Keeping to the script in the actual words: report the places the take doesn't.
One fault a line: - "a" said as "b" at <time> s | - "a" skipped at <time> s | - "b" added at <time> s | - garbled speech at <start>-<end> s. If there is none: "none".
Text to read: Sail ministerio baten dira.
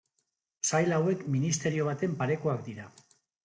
- "hauek" added at 1.0 s
- "parekoak" added at 2.2 s